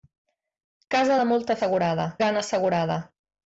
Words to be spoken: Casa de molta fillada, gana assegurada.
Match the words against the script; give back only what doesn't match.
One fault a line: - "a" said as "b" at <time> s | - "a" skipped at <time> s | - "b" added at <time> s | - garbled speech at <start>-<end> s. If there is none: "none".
- "fillada" said as "assegurada" at 1.6 s